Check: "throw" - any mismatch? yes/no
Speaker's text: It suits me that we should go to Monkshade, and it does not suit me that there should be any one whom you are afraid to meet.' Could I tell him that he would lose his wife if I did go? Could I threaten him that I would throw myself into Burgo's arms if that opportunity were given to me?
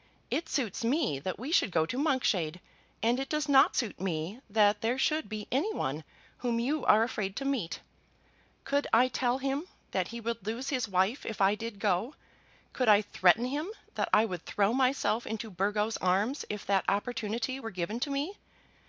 no